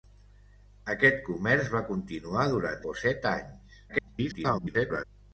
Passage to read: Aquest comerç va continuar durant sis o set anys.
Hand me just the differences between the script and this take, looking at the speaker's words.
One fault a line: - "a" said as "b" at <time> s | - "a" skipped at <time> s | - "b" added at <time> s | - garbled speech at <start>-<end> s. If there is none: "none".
- "sis" skipped at 2.8 s
- garbled speech at 3.9-5.0 s